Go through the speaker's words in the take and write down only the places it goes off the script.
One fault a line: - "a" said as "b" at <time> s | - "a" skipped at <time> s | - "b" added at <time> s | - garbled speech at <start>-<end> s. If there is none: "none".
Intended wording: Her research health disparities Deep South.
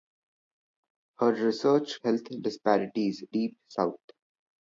none